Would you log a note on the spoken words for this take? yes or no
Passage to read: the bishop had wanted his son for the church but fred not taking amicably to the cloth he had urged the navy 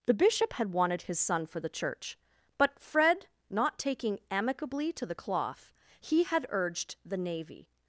no